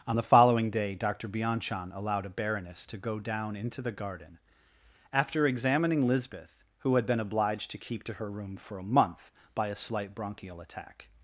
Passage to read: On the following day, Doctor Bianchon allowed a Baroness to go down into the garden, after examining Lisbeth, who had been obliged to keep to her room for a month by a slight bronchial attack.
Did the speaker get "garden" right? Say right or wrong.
right